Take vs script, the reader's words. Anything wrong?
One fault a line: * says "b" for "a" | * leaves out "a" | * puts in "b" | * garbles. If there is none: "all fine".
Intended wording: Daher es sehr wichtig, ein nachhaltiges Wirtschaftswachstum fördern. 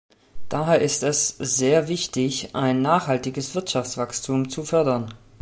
* puts in "ist"
* puts in "zu"